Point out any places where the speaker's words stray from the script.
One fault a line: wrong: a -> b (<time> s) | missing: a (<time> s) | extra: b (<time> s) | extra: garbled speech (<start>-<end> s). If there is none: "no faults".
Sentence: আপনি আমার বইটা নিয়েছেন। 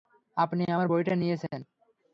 no faults